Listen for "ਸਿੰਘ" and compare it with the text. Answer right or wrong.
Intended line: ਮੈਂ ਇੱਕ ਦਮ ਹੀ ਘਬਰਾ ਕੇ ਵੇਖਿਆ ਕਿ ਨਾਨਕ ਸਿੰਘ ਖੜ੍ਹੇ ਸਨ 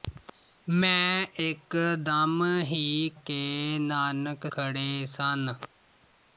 wrong